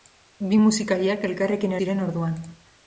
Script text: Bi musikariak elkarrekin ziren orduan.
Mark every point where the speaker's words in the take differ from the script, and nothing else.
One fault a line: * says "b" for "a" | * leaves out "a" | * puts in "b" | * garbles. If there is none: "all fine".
all fine